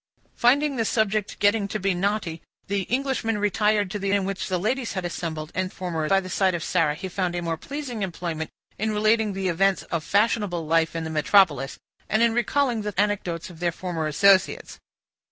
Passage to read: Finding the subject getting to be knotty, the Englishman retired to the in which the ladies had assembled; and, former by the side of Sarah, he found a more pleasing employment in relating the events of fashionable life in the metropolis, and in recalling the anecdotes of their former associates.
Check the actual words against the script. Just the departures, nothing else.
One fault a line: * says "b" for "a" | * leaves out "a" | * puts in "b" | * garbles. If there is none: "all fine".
all fine